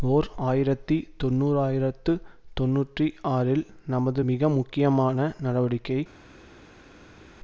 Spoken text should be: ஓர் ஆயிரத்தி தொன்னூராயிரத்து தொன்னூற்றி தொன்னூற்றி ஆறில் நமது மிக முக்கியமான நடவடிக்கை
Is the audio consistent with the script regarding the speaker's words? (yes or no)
no